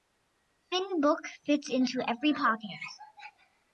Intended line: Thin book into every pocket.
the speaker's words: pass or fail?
fail